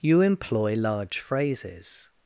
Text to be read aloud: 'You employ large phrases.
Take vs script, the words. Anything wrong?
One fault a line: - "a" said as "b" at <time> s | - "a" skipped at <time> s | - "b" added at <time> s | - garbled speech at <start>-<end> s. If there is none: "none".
none